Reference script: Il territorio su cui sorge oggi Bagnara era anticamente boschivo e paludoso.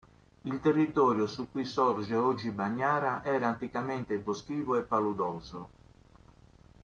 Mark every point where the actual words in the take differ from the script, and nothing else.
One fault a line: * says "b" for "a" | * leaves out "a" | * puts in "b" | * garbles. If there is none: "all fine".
all fine